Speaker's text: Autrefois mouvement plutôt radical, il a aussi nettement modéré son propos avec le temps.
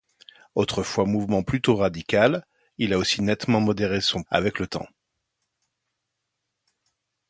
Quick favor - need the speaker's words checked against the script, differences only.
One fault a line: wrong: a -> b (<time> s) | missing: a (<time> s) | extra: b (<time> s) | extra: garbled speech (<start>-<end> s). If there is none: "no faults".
missing: propos (4.2 s)